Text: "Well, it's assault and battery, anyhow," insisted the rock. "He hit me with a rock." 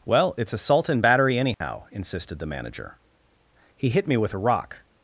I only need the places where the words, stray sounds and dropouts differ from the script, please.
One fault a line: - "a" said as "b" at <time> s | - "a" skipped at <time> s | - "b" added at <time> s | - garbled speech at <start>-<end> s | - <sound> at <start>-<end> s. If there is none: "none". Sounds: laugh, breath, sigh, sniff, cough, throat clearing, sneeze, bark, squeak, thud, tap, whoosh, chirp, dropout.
- dropout at 1.5-1.6 s
- "rock" said as "manager" at 2.5 s